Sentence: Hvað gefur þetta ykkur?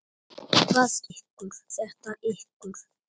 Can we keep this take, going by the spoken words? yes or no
no